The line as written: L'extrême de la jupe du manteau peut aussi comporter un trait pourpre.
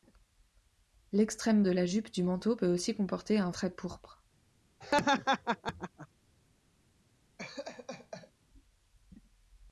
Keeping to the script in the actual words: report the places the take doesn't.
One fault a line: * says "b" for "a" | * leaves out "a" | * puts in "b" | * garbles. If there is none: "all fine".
all fine